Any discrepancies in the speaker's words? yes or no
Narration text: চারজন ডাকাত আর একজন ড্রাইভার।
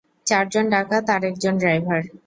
no